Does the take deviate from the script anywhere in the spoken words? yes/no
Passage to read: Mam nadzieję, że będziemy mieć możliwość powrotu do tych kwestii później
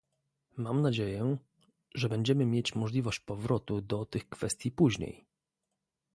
no